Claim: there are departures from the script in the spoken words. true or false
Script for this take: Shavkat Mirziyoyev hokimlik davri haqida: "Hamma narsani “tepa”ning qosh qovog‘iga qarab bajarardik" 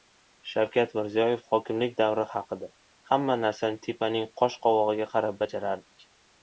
false